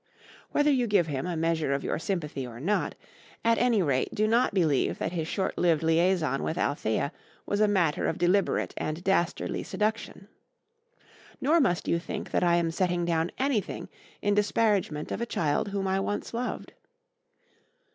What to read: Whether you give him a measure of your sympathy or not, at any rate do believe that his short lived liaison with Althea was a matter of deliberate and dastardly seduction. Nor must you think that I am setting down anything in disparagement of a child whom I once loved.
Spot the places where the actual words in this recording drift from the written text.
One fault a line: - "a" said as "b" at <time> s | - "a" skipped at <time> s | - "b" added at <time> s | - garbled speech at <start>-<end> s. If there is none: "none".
- "not" added at 4.2 s